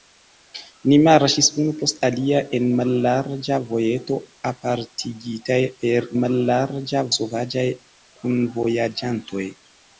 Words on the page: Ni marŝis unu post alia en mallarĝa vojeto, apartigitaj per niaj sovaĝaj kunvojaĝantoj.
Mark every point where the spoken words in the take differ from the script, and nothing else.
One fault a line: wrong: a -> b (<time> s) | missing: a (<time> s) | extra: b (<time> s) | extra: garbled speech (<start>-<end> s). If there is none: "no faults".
wrong: niaj -> mallarĝa (6.2 s)